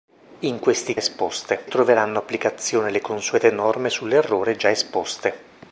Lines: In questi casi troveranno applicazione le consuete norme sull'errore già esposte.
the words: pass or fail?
fail